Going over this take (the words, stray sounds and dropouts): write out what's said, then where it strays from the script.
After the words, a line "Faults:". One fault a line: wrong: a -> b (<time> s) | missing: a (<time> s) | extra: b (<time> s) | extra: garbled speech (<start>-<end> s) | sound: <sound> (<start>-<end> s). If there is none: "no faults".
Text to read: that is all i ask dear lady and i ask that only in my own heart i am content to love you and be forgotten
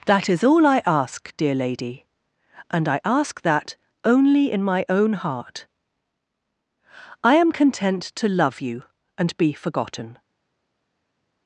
that is all i ask dear lady and i ask that only in my own heart i am content to love you and be forgotten
Faults:
no faults